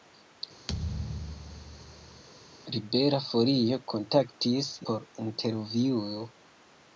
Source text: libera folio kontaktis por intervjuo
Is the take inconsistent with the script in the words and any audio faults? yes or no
yes